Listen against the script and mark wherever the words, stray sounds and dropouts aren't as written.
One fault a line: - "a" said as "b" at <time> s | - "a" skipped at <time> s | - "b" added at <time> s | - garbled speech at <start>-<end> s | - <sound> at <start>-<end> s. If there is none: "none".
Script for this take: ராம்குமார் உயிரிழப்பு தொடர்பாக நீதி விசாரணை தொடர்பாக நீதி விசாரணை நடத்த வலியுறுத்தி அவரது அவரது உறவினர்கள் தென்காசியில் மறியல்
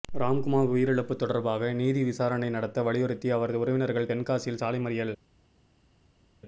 - "தொடர்பாக நீதி விசாரணை" skipped at 2.5 s
- "அவரது" skipped at 3.6 s
- "சாலை" added at 4.6 s